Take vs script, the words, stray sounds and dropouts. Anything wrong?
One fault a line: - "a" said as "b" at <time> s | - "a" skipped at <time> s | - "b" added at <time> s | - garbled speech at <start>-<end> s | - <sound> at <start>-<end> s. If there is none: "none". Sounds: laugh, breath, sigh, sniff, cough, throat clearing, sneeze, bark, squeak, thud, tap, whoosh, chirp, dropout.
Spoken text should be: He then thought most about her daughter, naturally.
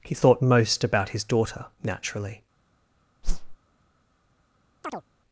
- "then" skipped at 0.1 s
- "her" said as "his" at 1.1 s
- whoosh at 3.2-3.6 s
- chirp at 4.8-5.0 s